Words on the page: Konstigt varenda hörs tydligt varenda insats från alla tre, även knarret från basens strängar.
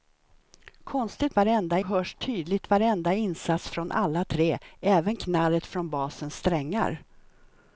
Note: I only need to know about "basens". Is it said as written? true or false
true